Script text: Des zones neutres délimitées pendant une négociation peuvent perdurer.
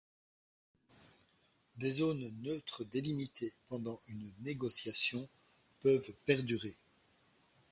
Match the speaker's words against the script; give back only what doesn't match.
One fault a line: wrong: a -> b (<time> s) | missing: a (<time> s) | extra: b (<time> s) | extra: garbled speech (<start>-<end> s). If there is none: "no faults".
no faults